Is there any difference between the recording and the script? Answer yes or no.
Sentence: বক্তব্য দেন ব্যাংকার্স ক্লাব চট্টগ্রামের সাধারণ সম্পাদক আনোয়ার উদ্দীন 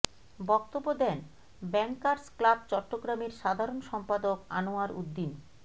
no